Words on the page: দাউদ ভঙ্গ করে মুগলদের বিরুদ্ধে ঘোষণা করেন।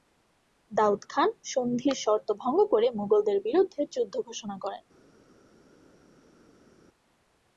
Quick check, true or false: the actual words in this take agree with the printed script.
false